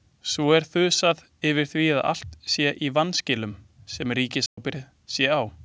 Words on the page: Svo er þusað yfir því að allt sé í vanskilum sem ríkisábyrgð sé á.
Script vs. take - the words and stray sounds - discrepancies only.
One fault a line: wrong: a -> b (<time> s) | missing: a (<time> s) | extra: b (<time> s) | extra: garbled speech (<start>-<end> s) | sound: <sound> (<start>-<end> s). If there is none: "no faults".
sound: dropout (4.5-4.6 s)